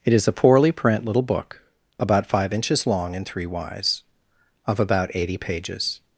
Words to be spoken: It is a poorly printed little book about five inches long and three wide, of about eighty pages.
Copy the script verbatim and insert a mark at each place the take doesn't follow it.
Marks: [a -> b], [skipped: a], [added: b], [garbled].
It is a poorly [printed -> print] little book about five inches long and three [wide, -> wise] of about eighty pages.